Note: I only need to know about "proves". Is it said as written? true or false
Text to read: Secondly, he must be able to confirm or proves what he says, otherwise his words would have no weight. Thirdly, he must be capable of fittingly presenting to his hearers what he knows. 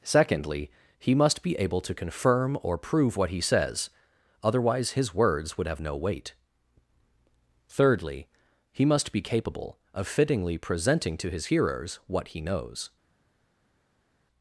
false